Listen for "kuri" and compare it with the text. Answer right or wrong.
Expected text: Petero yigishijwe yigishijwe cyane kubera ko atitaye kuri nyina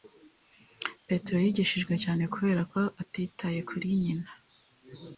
right